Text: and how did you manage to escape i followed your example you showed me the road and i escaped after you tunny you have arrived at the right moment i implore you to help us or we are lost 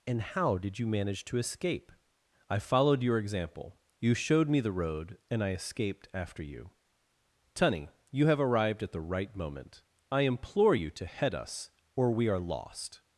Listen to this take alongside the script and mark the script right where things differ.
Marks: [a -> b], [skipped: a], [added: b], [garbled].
and how did you manage to escape i followed your example you showed me the road and i escaped after you tunny you have arrived at the right moment i implore you to [help -> head] us or we are lost